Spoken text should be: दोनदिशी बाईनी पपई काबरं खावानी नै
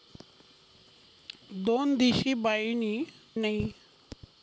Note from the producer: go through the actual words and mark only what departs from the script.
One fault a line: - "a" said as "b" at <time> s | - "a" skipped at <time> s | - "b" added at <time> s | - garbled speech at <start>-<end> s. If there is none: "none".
- "पपई काबरं खावानी" skipped at 2.9 s